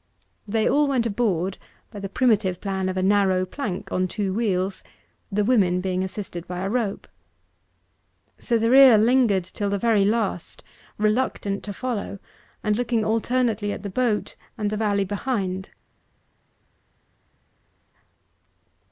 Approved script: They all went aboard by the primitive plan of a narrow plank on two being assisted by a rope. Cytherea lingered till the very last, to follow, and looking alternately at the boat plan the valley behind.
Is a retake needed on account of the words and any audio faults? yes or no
yes